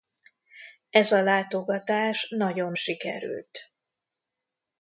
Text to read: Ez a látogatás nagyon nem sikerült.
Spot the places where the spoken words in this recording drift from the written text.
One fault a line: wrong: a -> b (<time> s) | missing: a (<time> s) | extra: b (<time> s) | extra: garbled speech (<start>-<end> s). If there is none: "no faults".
missing: nem (2.7 s)